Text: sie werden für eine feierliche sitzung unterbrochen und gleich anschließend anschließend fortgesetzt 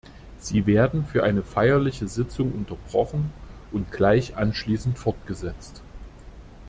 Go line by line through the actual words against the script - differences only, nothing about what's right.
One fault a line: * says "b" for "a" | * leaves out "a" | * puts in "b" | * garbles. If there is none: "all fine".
* leaves out "anschließend"